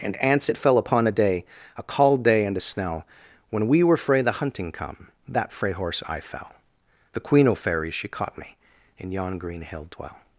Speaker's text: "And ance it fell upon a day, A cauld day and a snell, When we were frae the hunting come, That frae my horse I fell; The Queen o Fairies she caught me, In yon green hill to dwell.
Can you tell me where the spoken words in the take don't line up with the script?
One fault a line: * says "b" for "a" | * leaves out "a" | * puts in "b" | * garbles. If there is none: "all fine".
* leaves out "my"
* leaves out "to"